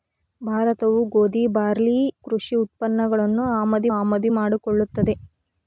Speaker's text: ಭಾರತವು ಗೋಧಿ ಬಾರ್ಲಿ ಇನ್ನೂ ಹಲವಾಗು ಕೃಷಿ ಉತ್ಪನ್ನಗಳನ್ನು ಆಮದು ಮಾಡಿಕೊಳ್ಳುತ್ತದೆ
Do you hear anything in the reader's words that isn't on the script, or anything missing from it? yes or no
yes